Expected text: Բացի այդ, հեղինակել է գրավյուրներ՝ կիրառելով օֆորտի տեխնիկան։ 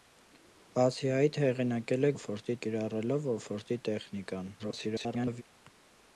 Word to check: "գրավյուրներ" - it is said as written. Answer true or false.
false